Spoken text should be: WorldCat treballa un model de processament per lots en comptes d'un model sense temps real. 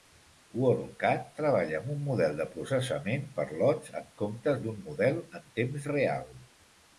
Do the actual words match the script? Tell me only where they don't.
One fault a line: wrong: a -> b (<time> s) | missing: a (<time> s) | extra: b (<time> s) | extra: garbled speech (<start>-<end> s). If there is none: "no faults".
extra: amb (1.8 s)
wrong: sense -> en (5.4 s)